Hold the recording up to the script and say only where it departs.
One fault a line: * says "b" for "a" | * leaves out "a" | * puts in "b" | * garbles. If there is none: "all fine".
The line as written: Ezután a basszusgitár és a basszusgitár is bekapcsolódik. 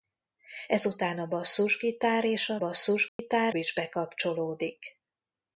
all fine